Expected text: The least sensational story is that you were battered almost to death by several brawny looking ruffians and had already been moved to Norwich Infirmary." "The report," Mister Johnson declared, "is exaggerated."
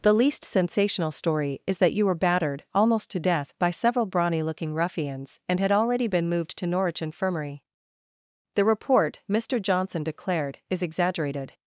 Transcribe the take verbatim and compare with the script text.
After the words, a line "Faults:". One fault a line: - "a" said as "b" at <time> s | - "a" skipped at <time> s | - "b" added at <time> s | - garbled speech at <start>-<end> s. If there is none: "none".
The least sensational story is that you were battered almost to death by several brawny looking ruffians and had already been moved to Norwich Infirmary." "The report," Mister Johnson declared, "is exaggerated."
Faults:
none